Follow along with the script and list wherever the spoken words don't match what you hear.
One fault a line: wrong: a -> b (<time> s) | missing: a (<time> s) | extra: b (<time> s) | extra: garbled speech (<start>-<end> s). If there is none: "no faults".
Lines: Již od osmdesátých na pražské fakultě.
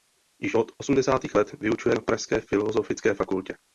extra: let vyučuje (1.3 s)
extra: filozofické (2.4 s)